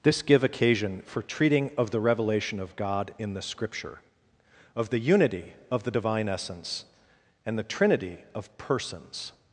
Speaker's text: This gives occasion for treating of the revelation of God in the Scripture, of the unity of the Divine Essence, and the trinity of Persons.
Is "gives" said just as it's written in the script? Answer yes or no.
no